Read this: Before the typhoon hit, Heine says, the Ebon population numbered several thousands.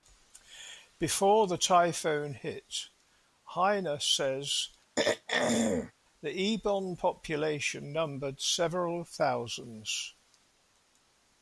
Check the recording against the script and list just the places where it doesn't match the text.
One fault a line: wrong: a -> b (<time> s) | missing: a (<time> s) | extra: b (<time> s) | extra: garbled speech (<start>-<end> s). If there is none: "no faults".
no faults